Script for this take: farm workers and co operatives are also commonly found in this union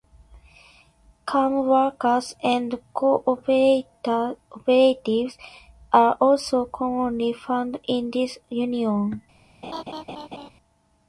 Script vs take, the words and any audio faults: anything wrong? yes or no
yes